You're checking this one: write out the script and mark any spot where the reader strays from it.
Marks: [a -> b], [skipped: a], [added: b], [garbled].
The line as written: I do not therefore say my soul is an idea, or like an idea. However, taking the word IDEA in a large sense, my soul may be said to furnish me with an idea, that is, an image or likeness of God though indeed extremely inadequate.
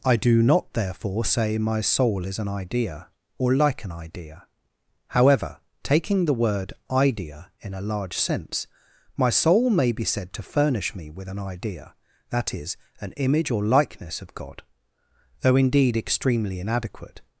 I do not therefore say my soul is an idea, or like an idea. However, taking the word IDEA in a large sense, my soul may be said to furnish me with an idea, that is, an image or likeness of God though indeed extremely inadequate.